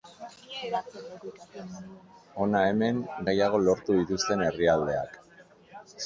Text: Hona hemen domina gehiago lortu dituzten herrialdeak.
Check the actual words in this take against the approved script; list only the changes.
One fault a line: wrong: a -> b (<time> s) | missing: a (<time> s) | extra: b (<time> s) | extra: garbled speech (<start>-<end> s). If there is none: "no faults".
missing: domina (3.0 s)